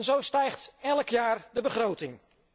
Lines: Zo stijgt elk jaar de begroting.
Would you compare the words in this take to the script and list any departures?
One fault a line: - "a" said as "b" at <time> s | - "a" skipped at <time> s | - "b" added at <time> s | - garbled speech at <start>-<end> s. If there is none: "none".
none